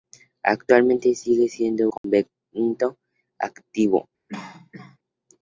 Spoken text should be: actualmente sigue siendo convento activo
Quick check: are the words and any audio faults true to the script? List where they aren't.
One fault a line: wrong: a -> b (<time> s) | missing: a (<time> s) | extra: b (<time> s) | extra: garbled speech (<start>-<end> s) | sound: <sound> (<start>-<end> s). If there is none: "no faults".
sound: dropout (2.0-2.0 s)
sound: cough (4.3-5.0 s)